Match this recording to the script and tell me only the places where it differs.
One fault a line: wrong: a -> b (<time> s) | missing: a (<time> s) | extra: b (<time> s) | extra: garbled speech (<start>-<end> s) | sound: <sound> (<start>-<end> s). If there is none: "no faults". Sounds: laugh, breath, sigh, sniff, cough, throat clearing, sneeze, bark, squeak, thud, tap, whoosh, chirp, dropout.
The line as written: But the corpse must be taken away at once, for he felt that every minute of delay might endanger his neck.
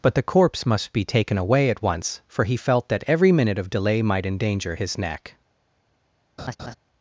sound: laugh (6.4-6.7 s)